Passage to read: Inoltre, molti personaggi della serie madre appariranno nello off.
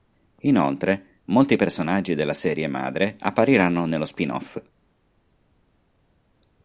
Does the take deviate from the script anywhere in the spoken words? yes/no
yes